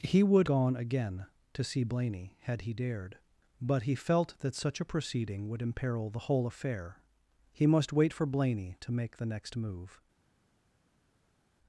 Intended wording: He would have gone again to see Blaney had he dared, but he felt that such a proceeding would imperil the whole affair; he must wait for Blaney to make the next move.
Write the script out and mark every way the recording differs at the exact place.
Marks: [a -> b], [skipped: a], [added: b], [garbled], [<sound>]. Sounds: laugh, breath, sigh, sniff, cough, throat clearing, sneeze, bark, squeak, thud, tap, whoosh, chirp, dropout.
He would [skipped: have] gone again to see Blaney had he dared, but he felt that such a proceeding would imperil the whole affair; he must wait for Blaney to make the next move.